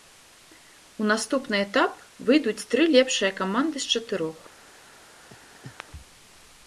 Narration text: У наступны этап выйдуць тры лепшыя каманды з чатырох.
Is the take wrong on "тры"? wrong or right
right